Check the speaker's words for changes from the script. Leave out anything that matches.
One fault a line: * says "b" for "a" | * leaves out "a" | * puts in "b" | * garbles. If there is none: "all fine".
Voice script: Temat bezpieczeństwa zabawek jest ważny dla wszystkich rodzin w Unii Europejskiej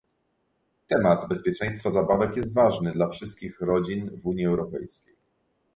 all fine